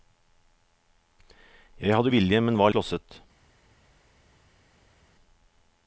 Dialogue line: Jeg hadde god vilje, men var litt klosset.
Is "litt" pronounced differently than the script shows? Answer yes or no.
yes